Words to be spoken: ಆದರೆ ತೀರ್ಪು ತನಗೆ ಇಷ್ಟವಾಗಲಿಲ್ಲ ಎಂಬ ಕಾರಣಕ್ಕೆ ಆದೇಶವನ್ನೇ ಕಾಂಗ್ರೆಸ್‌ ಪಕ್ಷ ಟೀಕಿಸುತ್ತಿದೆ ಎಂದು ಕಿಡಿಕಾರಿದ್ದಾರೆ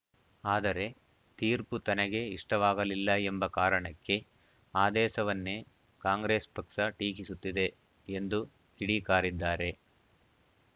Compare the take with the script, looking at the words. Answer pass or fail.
pass